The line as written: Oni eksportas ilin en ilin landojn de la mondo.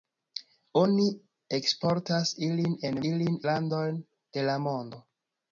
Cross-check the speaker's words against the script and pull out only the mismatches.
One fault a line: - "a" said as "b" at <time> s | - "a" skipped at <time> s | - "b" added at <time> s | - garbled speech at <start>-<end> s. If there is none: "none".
none